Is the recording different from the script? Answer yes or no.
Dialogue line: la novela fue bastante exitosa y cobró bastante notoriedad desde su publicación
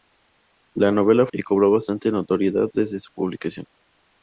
yes